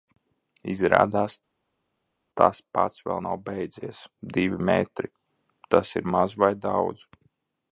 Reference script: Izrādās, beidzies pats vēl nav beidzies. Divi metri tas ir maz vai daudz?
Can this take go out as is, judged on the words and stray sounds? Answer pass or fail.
fail